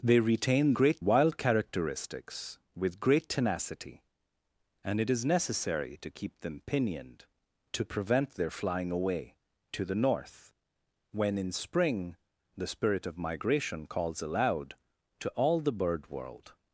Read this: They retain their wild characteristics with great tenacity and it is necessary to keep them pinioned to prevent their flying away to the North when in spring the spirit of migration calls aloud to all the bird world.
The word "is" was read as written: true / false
true